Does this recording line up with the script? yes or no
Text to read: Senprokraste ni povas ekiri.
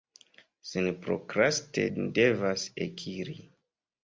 no